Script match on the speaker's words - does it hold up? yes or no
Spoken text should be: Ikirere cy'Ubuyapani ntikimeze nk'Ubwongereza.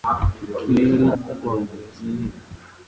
no